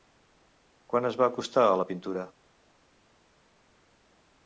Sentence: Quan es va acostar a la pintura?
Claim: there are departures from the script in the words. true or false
false